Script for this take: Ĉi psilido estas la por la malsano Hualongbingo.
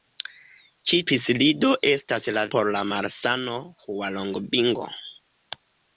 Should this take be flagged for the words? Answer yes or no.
no